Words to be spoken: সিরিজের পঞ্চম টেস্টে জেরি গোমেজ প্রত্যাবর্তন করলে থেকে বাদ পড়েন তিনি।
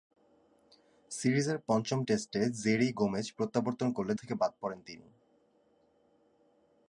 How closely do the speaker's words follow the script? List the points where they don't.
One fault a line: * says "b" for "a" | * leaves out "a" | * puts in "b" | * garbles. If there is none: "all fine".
all fine